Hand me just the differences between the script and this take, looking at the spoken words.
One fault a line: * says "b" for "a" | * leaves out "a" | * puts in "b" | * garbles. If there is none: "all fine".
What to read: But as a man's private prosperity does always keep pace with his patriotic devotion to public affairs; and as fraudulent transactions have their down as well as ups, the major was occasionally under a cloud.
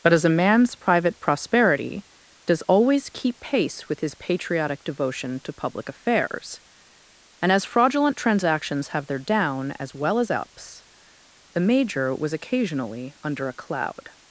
all fine